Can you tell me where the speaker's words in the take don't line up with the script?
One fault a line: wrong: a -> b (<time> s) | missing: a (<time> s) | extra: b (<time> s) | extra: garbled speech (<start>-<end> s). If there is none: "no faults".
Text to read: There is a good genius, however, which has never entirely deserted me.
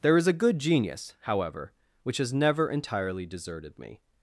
no faults